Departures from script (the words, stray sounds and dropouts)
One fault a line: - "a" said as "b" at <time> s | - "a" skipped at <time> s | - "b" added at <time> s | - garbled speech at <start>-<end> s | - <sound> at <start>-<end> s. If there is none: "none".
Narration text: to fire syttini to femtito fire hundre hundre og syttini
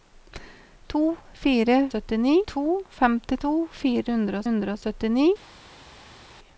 none